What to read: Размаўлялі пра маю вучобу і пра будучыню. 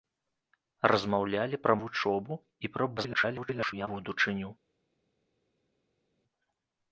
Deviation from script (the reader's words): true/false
true